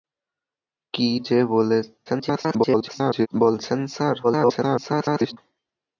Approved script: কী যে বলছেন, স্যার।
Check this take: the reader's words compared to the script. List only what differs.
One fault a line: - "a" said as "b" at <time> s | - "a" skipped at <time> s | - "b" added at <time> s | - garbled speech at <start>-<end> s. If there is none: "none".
- garbled speech at 2.1-3.3 s
- garbled speech at 4.2-5.4 s